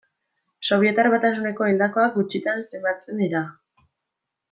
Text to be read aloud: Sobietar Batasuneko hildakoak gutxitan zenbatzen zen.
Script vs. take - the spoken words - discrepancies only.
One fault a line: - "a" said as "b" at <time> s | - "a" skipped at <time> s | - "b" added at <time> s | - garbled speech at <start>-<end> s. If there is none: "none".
- "zen" said as "dira" at 3.2 s